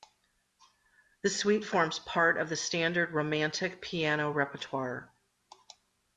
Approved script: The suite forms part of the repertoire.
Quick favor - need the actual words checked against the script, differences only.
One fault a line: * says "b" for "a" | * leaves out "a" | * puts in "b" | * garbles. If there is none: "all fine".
* puts in "standard Romantic piano"